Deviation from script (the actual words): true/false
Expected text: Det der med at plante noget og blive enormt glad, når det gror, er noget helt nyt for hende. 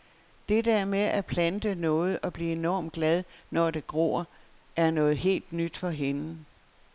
false